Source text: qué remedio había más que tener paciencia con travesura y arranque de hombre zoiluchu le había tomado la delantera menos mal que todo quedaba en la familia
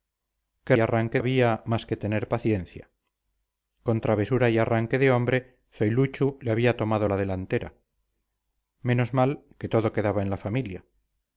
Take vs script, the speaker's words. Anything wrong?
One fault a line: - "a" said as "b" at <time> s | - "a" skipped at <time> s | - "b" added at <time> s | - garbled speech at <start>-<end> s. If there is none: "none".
- "remedio" said as "arranque" at 0.8 s